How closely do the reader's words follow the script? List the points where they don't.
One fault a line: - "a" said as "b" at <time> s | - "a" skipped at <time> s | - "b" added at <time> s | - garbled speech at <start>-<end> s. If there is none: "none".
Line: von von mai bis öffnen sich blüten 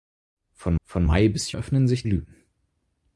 none